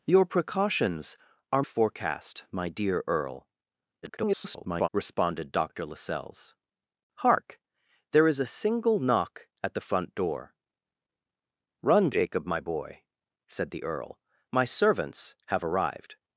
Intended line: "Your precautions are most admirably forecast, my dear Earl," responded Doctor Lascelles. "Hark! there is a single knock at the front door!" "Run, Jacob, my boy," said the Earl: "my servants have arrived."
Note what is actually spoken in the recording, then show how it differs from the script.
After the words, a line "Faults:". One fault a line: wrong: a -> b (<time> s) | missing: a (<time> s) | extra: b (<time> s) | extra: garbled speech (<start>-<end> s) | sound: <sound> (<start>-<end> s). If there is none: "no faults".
"Your precautions are forecast, my dear Earl," [garbled] responded Doctor Lascelles. "Hark! there is a single knock at the front door!" "Run, Jacob, my boy," said the Earl: "my servants have arrived."
Faults:
missing: most admirably (1.6 s)
extra: garbled speech (4.0-4.9 s)